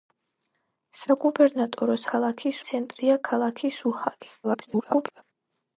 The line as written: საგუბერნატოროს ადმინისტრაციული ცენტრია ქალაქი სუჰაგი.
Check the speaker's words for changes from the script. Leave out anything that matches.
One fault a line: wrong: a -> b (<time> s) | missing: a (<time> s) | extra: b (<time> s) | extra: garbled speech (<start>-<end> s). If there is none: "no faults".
wrong: ადმინისტრაციული -> ქალაქი (2.1 s)
extra: garbled speech (4.4-5.2 s)